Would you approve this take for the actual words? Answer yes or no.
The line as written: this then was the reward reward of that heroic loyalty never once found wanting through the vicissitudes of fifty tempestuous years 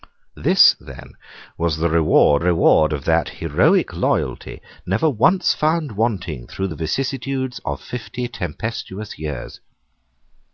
yes